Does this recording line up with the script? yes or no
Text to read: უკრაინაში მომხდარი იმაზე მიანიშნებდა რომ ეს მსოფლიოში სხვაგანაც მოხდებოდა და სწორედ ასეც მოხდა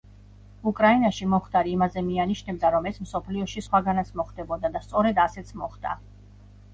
yes